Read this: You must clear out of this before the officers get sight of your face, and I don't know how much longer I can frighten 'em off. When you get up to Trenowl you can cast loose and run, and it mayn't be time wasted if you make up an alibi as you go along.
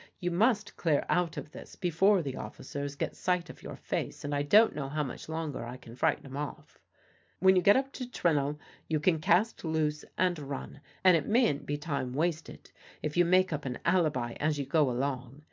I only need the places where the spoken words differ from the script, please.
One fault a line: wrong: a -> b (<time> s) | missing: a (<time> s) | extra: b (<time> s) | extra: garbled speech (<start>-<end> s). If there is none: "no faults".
no faults